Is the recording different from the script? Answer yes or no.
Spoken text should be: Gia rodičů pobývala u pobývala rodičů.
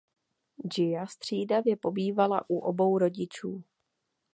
yes